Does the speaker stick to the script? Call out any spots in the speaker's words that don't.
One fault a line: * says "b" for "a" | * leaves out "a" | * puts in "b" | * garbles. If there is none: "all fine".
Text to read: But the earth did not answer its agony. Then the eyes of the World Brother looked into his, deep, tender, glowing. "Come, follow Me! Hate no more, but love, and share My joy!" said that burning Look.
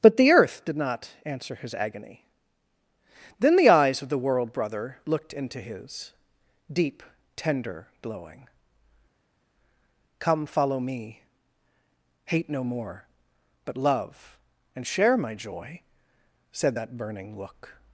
* says "his" for "its"